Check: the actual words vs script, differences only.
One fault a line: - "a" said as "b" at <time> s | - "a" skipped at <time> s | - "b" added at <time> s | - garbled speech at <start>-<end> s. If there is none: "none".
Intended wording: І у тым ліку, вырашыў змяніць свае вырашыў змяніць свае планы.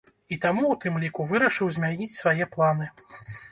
- "таму" added at 0.5 s
- "вырашыў змяніць свае" skipped at 2.5 s